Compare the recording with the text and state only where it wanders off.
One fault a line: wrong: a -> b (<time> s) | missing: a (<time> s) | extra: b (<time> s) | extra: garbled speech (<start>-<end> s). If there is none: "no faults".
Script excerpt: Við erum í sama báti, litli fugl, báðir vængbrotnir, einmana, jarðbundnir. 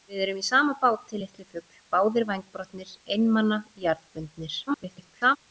extra: garbled speech (4.7-5.4 s)